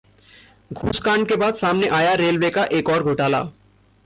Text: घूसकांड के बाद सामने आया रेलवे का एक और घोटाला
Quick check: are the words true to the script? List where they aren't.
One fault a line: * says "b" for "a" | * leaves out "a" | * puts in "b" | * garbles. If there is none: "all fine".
all fine